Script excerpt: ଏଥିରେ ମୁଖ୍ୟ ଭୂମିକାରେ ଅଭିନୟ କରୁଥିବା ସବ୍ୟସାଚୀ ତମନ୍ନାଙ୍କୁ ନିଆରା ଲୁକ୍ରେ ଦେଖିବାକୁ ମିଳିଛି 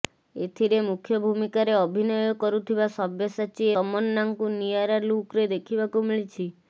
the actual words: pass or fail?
pass